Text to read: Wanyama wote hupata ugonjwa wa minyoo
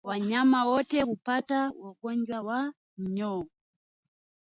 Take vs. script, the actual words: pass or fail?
pass